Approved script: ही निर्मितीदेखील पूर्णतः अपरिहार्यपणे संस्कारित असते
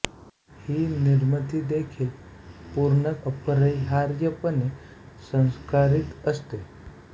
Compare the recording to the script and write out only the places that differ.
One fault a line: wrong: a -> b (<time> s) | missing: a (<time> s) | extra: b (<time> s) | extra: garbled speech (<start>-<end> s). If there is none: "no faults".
no faults